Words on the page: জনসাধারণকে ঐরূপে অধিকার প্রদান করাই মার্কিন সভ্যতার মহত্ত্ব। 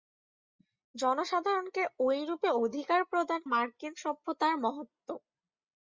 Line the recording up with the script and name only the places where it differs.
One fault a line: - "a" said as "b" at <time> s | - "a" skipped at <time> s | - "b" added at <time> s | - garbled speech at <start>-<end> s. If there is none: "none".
- "করাই" skipped at 3.4 s